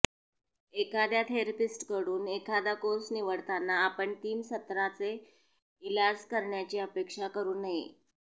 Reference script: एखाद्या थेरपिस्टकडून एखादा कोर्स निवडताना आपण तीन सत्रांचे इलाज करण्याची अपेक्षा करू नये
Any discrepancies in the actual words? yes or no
no